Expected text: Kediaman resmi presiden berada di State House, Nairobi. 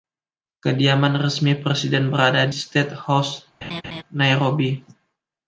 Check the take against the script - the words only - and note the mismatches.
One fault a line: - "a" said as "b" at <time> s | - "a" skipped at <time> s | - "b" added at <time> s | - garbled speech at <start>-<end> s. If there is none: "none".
- "di" skipped at 2.5 s